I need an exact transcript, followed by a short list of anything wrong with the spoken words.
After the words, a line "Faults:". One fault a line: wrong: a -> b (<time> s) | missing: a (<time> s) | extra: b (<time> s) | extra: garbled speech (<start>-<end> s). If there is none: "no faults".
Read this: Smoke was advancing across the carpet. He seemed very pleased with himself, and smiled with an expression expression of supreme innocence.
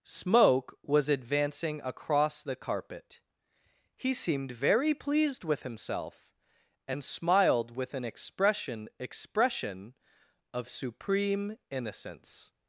Smoke was advancing across the carpet. He seemed very pleased with himself, and smiled with an expression expression of supreme innocence.
Faults:
no faults